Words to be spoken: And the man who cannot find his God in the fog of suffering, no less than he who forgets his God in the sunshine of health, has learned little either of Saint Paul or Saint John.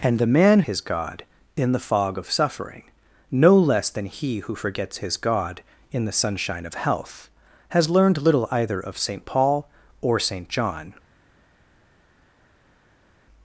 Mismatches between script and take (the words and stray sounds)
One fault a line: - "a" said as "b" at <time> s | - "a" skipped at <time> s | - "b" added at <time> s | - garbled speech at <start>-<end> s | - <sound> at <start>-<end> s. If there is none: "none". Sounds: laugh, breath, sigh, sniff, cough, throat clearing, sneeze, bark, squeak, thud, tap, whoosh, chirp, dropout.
- "who cannot find" skipped at 0.6 s